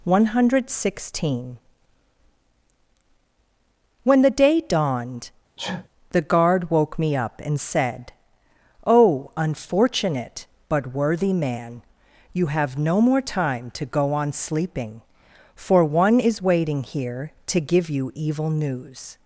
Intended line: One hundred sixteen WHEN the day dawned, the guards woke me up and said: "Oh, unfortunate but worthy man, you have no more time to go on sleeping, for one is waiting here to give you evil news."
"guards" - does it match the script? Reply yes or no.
no